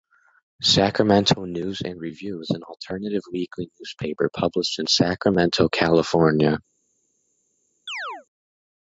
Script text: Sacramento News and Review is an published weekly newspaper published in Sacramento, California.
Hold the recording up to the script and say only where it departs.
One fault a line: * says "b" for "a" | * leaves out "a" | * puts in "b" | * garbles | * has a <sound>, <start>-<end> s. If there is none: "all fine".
* says "alternative" for "published"
* has a chirp, 7.9-8.3 s